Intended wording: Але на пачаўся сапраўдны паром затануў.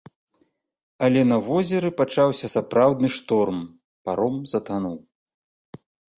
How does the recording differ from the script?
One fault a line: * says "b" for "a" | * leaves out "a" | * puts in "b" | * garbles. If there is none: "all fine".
* puts in "возеры"
* puts in "шторм"